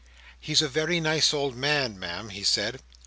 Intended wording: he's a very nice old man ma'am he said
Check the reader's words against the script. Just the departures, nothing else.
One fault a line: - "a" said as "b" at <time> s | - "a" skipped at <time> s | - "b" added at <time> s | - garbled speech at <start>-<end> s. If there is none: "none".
none